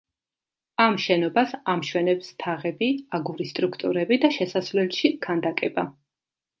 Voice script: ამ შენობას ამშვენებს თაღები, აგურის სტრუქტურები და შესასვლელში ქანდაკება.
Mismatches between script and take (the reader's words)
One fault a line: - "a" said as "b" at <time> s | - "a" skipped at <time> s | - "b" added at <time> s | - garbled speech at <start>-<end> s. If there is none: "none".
none